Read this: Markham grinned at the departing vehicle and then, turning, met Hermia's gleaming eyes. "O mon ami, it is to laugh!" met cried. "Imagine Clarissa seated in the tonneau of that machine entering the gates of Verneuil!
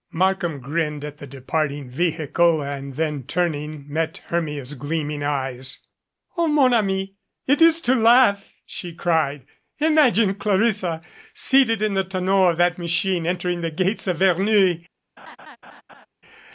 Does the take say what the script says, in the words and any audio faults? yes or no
no